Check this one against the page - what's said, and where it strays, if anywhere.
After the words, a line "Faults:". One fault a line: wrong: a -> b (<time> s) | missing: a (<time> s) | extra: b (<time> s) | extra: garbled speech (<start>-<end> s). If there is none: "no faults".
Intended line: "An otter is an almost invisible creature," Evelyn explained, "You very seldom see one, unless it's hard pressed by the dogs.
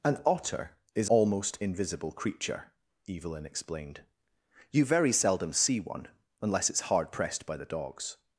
"An otter is almost invisible creature," Evelyn explained, "You very seldom see one, unless it's hard pressed by the dogs.
Faults:
missing: an (1.1 s)